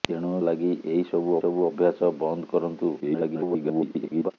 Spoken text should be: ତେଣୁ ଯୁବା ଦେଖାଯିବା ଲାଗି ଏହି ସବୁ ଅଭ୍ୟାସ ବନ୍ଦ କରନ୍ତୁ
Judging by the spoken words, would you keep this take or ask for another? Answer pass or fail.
fail